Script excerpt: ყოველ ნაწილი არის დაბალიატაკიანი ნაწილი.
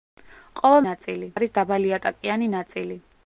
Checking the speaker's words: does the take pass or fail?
pass